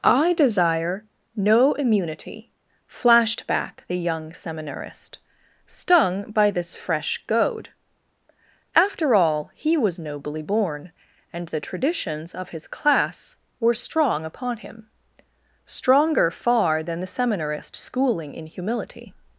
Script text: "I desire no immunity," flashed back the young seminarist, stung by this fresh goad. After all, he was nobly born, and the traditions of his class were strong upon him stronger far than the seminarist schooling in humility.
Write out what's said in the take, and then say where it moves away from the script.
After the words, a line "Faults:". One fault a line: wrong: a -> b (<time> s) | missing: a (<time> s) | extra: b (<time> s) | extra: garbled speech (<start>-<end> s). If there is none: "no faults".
"I desire no immunity," flashed back the young seminarist, stung by this fresh goad. After all, he was nobly born, and the traditions of his class were strong upon him stronger far than the seminarist schooling in humility.
Faults:
no faults